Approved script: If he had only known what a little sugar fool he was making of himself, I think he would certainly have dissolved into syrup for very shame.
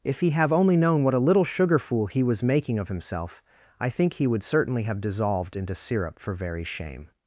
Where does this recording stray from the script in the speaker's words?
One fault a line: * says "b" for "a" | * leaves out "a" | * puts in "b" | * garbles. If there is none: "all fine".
* says "have" for "had"